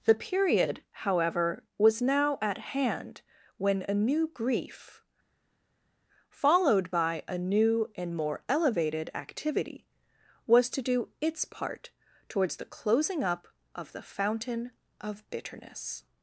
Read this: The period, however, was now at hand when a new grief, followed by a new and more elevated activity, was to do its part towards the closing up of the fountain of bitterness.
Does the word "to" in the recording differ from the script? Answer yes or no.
no